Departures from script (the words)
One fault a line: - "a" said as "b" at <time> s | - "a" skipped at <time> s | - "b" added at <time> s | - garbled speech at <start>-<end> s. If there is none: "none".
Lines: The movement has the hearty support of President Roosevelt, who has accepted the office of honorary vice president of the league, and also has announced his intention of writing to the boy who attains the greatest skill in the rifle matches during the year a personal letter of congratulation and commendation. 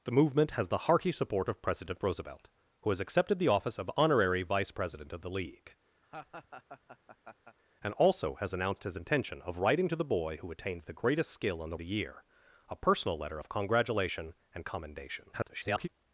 - "rifle matches during" skipped at 11.8 s
- garbled speech at 15.3-15.9 s